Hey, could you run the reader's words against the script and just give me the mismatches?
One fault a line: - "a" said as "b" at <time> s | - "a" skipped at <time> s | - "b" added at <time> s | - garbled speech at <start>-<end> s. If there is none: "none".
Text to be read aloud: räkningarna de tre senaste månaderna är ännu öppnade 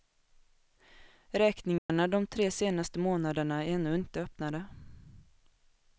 - "inte" added at 4.0 s